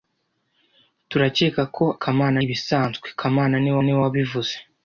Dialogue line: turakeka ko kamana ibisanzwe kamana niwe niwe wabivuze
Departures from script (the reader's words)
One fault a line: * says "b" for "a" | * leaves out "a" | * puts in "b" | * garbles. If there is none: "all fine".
all fine